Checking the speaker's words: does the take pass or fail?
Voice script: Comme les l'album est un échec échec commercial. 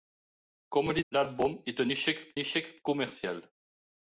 pass